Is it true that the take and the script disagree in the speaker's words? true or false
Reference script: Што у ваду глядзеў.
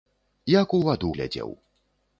true